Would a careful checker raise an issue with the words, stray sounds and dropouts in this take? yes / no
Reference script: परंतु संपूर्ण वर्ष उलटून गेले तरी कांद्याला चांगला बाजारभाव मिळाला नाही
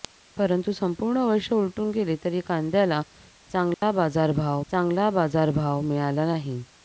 yes